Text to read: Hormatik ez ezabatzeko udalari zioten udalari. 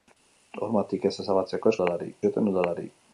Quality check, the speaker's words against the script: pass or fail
pass